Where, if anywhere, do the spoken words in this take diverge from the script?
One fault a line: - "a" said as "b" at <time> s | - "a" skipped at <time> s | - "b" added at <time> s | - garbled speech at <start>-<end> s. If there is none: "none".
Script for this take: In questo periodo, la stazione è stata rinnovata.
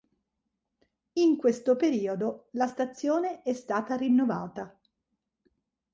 none